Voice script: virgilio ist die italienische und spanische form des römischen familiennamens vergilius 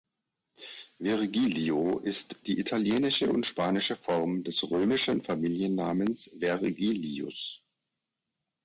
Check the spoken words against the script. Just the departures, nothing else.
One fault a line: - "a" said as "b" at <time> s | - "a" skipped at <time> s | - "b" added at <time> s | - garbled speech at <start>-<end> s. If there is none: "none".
none